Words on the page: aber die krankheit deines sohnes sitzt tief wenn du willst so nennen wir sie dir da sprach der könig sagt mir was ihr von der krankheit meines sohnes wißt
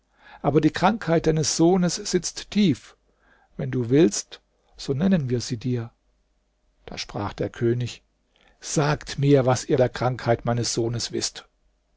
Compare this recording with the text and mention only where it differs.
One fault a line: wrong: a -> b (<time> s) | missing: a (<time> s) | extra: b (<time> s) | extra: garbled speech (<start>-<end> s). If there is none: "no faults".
missing: von (9.8 s)